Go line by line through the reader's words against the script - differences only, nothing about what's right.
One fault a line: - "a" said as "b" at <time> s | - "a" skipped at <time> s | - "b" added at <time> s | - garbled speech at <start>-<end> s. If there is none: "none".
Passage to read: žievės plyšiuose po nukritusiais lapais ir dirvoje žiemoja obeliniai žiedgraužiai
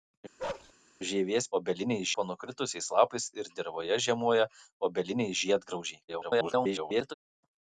- "plyšiuose" said as "obeliniai" at 1.6 s
- garbled speech at 6.1-7.1 s